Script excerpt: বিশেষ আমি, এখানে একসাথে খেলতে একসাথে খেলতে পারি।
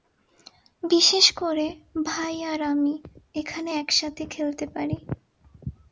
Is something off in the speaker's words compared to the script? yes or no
yes